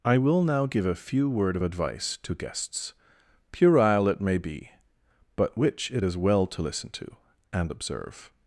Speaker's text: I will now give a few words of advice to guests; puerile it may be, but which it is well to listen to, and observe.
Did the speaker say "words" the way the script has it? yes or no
no